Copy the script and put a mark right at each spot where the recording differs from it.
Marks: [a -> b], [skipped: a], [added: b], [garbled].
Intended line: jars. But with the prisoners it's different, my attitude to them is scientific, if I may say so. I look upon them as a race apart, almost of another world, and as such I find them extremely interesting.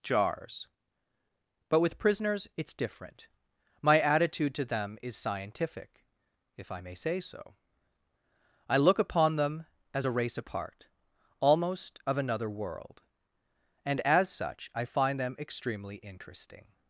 jars. But with [skipped: the] prisoners it's different, my attitude to them is scientific, if I may say so. I look upon them as a race apart, almost of another world, and as such I find them extremely interesting.